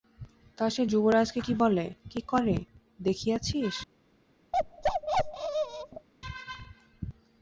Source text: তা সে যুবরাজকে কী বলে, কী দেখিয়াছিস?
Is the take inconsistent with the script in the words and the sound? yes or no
yes